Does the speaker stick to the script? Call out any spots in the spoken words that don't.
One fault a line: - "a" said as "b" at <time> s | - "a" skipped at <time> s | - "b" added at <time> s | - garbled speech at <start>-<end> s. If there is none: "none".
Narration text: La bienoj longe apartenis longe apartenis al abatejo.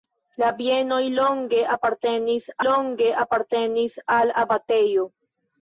none